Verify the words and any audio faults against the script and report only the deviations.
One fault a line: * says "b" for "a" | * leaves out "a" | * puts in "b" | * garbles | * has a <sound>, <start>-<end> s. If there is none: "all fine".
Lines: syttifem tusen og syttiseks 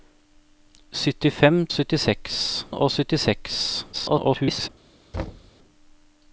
* says "syttiseks" for "tusen"
* garbles
* has a thud, 5.1-5.5 s